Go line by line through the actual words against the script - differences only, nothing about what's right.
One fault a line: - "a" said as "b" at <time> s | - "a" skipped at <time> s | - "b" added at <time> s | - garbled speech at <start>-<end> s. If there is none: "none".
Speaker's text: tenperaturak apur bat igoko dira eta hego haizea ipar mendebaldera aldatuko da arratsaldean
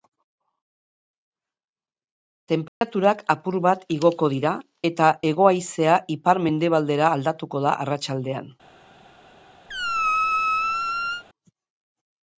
none